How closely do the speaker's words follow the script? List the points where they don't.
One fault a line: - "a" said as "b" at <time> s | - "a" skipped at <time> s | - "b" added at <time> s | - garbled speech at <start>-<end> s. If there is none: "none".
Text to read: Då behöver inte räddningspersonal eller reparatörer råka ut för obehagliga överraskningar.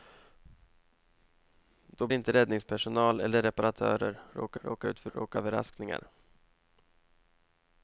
- "behöver" skipped at 2.1 s
- "råka" added at 4.6 s
- "obehagliga" said as "råka" at 5.1 s